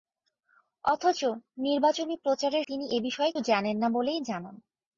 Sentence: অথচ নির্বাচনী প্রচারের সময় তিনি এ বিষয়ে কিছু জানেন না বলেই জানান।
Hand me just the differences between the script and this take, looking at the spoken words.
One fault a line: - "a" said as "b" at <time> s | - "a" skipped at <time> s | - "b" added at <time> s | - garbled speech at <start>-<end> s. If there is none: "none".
- "সময়" skipped at 2.6 s
- "কিছু" skipped at 3.3 s